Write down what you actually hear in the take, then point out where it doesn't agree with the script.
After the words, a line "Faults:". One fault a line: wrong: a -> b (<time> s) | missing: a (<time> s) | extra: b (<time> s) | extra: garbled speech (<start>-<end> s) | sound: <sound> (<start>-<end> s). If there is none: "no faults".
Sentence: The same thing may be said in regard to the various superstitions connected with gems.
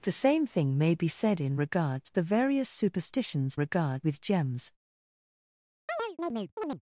The same thing may be said in regard to the various superstitions regard with gems.
Faults:
wrong: connected -> regard (3.5 s)
sound: chirp (5.9-6.8 s)